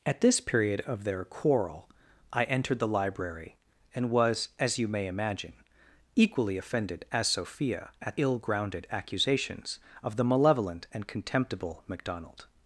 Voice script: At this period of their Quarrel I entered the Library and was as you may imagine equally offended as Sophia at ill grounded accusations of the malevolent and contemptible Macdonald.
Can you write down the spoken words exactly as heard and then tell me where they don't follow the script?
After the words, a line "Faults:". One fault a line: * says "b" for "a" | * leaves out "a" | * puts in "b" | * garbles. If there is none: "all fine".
At this period of their Quarrel I entered the Library and was as you may imagine equally offended as Sophia at ill grounded accusations of the malevolent and contemptible Macdonald.
Faults:
all fine